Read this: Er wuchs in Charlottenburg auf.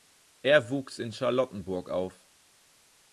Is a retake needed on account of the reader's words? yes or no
no